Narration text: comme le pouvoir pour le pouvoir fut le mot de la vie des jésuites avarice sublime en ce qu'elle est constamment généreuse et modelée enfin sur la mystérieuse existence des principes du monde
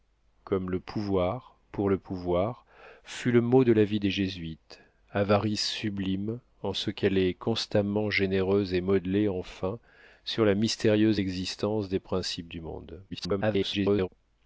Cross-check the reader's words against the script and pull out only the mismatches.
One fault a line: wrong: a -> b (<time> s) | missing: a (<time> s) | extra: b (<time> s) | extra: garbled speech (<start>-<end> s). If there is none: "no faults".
extra: garbled speech (13.1-14.1 s)